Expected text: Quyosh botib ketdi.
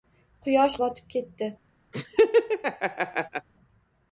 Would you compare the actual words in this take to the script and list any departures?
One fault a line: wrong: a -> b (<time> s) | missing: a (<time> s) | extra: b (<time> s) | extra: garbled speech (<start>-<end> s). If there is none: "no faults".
no faults